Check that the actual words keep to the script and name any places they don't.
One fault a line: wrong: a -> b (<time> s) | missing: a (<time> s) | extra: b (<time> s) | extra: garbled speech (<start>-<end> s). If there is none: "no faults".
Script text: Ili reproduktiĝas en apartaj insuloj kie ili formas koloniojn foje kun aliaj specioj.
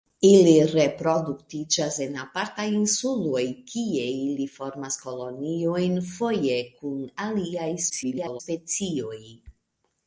extra: garbled speech (7.9-8.4 s)